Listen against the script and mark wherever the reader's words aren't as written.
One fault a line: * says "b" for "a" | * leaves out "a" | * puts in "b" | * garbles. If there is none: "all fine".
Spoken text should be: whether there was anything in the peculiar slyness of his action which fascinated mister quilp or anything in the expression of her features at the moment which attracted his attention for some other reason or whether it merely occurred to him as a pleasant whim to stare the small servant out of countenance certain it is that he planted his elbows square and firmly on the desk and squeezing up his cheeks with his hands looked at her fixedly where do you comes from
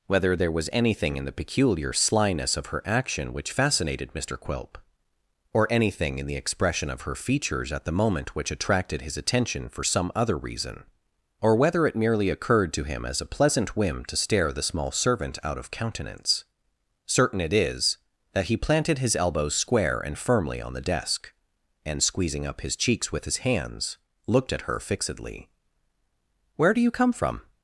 * says "her" for "his"
* says "come" for "comes"